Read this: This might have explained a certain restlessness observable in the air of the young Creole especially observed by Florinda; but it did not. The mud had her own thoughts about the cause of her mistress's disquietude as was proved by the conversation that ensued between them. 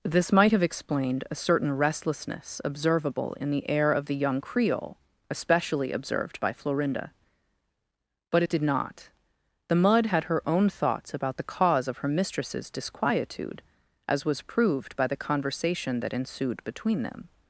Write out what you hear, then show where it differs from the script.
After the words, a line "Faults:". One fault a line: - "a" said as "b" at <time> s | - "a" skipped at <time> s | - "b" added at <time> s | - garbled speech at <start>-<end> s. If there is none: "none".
This might have explained a certain restlessness observable in the air of the young Creole especially observed by Florinda; but it did not. The mud had her own thoughts about the cause of her mistress's disquietude as was proved by the conversation that ensued between them.
Faults:
none